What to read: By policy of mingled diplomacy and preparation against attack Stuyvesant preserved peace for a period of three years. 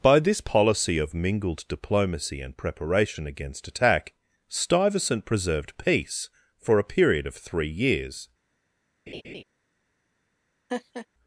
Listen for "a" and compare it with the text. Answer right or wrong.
right